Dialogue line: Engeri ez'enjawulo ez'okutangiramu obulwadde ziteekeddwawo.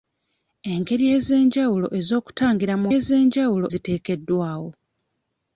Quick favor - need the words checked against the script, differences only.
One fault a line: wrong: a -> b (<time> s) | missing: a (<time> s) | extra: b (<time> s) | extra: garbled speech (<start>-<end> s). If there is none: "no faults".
wrong: obulwadde -> ez'enjawulo (3.0 s)